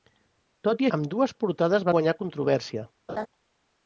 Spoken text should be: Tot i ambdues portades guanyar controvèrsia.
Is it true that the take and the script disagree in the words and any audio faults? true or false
true